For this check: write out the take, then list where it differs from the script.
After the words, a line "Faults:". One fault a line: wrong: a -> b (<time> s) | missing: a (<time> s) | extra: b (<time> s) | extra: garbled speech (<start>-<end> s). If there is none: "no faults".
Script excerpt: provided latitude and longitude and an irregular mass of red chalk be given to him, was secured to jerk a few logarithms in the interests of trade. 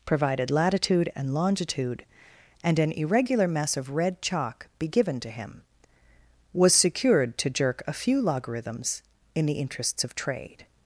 provided latitude and longitude and an irregular mess of red chalk be given to him, was secured to jerk a few logarithms in the interests of trade.
Faults:
wrong: mass -> mess (3.5 s)